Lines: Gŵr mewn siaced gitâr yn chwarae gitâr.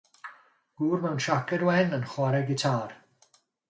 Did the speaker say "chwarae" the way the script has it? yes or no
yes